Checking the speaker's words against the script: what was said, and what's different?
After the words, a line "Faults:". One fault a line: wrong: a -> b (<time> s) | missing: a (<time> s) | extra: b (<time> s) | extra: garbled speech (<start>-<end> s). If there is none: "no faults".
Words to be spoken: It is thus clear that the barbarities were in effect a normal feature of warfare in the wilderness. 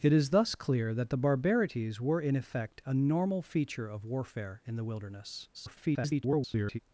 It is thus clear that the barbarities were in effect a normal feature of warfare in the wilderness. [garbled]
Faults:
extra: garbled speech (5.5-6.8 s)